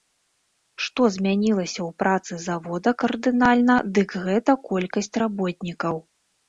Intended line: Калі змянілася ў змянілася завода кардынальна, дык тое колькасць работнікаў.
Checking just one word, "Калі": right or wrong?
wrong